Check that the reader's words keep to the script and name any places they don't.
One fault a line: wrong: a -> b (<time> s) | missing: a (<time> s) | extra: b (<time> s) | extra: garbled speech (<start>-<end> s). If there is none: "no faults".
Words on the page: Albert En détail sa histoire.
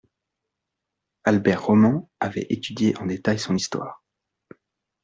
extra: Roman avait étudié (1.6 s)
wrong: sa -> son (3.4 s)